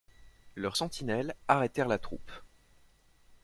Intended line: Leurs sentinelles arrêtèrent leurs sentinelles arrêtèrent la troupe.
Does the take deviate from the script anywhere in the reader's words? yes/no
yes